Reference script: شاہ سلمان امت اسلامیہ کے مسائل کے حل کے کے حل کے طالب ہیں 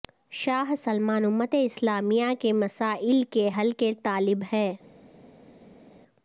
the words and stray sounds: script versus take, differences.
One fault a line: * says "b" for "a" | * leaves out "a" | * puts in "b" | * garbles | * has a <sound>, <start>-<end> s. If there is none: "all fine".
* leaves out "کے حل کے"